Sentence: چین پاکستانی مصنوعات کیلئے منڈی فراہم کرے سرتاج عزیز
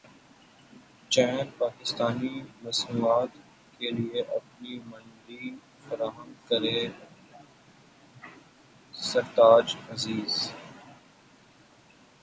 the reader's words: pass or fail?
fail